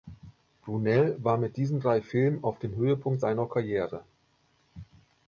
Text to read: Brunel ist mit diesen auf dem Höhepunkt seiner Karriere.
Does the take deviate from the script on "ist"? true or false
true